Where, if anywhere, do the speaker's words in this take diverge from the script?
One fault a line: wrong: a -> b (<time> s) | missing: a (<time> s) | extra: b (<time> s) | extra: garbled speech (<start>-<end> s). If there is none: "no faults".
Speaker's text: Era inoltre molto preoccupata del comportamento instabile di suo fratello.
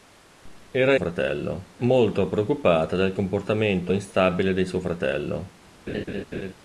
wrong: inoltre -> fratello (0.9 s)